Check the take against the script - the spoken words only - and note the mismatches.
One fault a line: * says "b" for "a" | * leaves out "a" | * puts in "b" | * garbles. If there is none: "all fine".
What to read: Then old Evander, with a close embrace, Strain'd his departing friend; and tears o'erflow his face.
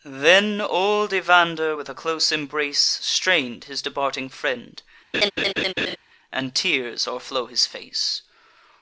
all fine